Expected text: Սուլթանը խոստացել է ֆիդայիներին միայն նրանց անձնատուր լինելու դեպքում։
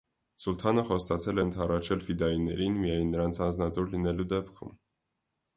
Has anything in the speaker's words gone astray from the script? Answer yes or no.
yes